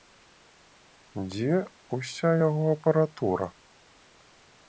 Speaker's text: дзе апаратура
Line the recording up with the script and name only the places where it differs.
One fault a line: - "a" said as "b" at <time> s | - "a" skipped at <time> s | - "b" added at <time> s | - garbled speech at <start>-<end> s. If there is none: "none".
- "ўся яго" added at 2.0 s